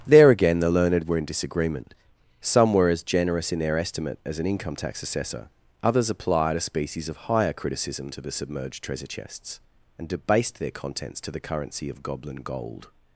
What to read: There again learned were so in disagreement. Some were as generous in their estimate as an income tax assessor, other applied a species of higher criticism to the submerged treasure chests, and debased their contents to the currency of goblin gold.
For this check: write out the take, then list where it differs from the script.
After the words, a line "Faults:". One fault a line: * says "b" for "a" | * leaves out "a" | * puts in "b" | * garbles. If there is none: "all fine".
There again the learned were in disagreement. Some were as generous in their estimate as an income tax assessor, others applied a species of higher criticism to the submerged treasure chests, and debased their contents to the currency of goblin gold.
Faults:
* puts in "the"
* leaves out "so"
* says "others" for "other"